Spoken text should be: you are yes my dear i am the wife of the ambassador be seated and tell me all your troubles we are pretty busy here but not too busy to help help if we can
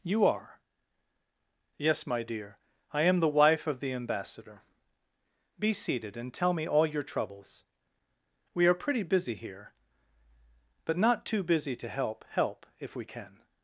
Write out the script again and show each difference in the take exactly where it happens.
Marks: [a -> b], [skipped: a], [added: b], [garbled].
you are yes my dear i am the wife of the ambassador be seated and tell me all your troubles we are pretty busy here but not too busy to help help if we can